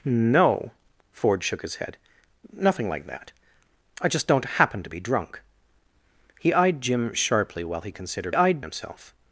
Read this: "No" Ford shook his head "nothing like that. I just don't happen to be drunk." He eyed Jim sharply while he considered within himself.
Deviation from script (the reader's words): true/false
true